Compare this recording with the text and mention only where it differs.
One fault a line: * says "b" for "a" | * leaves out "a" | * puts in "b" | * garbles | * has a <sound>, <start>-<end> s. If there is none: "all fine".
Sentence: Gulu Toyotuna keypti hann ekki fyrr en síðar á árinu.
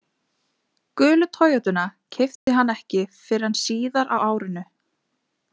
* has a dropout, 2.4-2.5 s